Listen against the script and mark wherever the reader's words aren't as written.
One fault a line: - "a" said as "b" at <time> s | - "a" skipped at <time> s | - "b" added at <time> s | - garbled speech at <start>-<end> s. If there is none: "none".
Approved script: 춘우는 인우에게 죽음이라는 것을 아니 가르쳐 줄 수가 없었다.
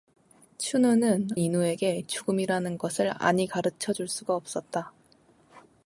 none